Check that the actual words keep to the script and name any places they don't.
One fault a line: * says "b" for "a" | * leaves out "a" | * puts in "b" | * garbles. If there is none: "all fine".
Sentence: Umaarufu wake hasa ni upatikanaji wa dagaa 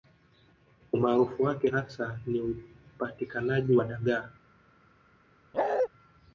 all fine